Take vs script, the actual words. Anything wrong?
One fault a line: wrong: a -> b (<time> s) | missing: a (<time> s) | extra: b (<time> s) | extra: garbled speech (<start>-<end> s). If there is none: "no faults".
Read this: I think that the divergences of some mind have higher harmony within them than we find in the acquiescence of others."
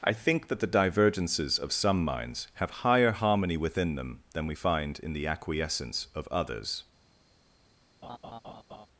wrong: mind -> minds (2.0 s)